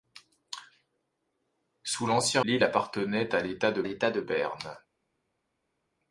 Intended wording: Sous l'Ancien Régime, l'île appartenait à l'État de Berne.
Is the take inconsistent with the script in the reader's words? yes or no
yes